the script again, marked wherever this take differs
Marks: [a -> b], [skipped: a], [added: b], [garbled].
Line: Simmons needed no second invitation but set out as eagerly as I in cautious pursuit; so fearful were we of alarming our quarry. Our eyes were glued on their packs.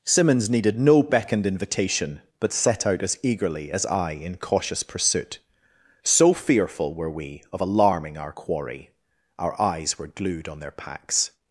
Simmons needed no [second -> beckoned] invitation but set out as eagerly as I in cautious pursuit; so fearful were we of alarming our quarry. Our eyes were glued on their packs.